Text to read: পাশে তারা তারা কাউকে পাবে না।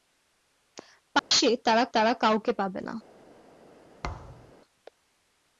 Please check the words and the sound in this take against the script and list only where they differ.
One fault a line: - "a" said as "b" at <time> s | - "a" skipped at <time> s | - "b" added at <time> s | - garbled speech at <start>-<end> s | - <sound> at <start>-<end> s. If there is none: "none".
- dropout at 1.2-1.3 s
- thud at 4.0-4.5 s